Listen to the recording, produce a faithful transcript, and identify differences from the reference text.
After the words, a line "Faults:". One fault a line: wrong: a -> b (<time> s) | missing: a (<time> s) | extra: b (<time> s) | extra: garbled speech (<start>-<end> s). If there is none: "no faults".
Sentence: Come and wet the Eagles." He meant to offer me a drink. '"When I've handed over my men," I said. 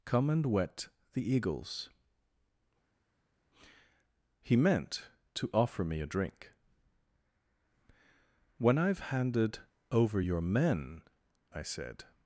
Come and wet the Eagles." He meant to offer me a drink. '"When I've handed over your men," I said.
Faults:
wrong: my -> your (10.2 s)